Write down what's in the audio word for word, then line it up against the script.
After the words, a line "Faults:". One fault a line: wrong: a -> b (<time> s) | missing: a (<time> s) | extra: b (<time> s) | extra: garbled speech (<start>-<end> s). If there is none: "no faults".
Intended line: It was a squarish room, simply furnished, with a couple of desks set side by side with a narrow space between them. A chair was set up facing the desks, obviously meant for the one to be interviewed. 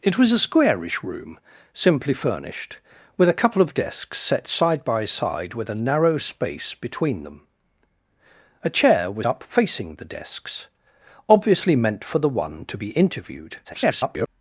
It was a squarish room, simply furnished, with a couple of desks set side by side with a narrow space between them. A chair was up facing the desks, obviously meant for the one to be interviewed. [garbled]
Faults:
missing: set (9.3 s)
extra: garbled speech (13.6-14.3 s)